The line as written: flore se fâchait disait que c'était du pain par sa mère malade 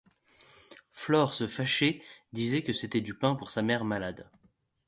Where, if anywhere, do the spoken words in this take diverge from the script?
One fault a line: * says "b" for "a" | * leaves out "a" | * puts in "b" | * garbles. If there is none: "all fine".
* says "pour" for "par"